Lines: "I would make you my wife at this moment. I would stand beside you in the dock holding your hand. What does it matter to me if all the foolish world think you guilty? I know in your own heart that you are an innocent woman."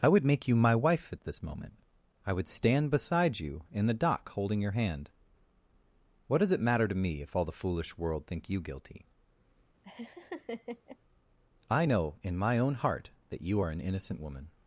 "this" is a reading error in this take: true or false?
false